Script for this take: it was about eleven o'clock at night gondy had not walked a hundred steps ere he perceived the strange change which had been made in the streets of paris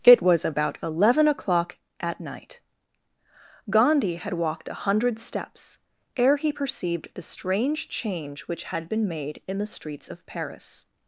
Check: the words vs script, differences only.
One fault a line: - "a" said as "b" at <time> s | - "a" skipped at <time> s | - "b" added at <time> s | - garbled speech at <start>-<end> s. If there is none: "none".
- "not" skipped at 4.3 s